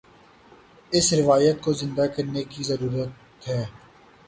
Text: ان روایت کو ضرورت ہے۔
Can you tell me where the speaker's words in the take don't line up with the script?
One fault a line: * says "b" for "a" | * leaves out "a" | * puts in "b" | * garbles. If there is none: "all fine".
* says "اس" for "ان"
* puts in "زندہ کرنے کی"